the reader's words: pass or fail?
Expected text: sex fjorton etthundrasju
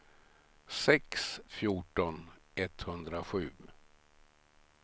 pass